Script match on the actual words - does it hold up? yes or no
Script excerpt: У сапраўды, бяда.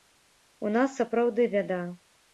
no